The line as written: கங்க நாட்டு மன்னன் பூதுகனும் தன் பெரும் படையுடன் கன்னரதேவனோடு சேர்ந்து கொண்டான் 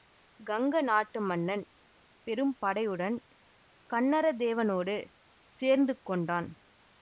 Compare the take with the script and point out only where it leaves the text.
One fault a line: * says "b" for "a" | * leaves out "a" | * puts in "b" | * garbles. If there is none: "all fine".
* leaves out "பூதுகனும் தன்"